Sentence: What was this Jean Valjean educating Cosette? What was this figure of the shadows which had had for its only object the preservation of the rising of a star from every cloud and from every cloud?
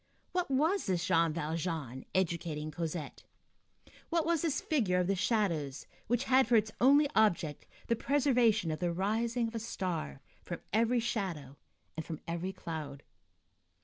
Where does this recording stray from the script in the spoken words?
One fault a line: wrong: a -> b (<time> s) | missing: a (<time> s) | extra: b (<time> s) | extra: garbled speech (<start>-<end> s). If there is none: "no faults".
missing: had (6.5 s)
wrong: cloud -> shadow (11.0 s)